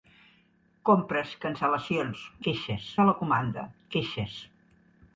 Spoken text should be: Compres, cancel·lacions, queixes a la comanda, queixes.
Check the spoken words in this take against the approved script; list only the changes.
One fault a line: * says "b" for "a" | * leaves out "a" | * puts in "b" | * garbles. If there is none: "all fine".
all fine